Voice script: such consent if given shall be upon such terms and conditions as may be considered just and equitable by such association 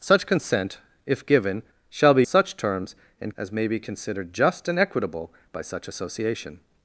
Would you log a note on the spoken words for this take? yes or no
yes